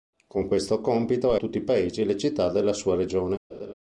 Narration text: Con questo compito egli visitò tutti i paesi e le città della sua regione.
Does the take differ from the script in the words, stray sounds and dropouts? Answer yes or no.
yes